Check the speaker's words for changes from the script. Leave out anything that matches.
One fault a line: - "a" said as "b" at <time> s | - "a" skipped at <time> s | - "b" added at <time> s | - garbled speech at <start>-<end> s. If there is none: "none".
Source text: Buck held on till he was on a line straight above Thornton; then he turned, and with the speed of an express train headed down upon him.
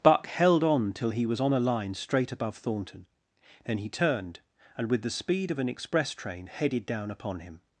none